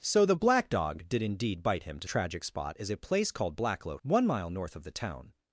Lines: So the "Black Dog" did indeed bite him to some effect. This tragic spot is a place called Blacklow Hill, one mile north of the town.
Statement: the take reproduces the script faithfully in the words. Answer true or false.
false